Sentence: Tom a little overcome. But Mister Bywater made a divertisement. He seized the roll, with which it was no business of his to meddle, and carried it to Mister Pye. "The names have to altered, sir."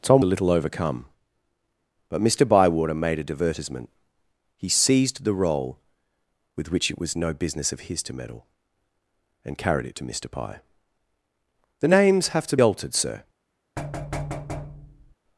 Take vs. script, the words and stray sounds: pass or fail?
fail